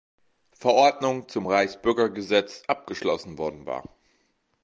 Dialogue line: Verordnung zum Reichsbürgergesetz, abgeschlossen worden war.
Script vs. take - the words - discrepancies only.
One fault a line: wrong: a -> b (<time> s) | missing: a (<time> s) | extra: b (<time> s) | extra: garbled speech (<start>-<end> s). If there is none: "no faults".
no faults